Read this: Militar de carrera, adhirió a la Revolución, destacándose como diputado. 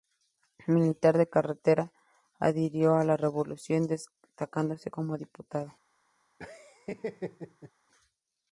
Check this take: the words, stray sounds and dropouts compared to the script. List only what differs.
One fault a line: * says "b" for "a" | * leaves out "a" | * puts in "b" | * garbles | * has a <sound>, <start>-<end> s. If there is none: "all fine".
* has a laugh, 6.4-7.7 s